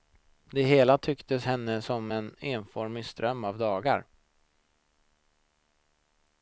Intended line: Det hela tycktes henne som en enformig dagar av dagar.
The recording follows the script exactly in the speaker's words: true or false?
false